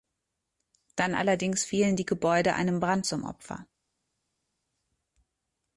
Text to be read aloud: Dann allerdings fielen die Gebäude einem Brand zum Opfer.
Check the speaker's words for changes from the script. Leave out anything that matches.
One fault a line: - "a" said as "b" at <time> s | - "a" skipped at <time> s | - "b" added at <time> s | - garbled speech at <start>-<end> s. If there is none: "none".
none